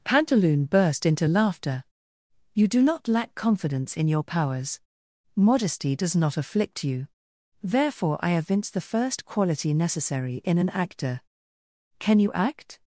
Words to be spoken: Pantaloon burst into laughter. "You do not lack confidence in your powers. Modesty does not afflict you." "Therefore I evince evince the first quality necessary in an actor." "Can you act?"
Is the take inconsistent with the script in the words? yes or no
yes